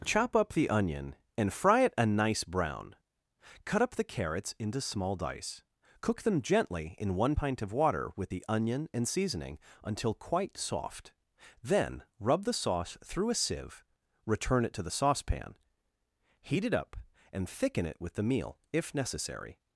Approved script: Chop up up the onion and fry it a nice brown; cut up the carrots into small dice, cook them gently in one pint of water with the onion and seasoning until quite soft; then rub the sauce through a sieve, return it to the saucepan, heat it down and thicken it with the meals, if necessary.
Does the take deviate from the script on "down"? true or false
true